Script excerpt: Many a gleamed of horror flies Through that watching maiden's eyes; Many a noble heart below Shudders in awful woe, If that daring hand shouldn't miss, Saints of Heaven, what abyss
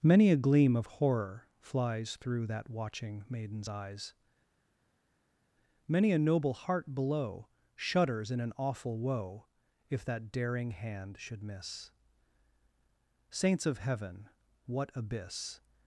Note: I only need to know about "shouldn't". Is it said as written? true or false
false